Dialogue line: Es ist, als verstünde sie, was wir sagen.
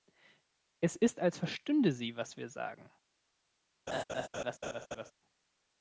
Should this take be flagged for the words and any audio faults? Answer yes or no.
yes